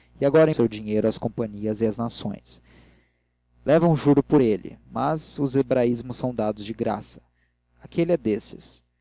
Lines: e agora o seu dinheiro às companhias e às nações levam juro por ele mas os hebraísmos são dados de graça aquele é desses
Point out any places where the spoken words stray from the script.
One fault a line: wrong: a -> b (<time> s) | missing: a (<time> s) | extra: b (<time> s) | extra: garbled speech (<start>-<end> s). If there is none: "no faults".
no faults